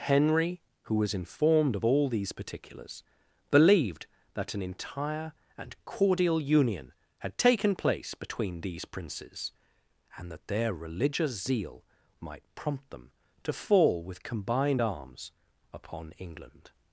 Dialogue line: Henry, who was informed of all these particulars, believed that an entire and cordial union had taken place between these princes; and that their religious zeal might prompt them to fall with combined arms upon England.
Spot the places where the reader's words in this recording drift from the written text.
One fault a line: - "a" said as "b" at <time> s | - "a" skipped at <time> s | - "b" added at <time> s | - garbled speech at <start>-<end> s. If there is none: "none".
none